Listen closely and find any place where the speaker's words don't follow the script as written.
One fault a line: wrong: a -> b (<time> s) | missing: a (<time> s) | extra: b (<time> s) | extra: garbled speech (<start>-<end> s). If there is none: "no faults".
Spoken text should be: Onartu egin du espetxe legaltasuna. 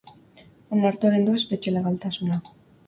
no faults